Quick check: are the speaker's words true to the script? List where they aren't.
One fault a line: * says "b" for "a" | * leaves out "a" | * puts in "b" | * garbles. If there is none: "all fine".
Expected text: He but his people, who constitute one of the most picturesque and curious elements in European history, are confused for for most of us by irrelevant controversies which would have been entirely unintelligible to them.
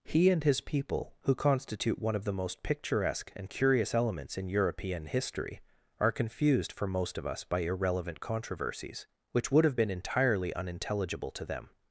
* says "and" for "but"
* leaves out "for"